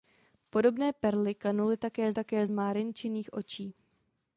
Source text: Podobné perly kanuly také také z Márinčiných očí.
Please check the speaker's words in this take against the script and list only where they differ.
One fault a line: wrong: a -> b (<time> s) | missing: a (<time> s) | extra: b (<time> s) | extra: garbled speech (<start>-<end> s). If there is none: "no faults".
no faults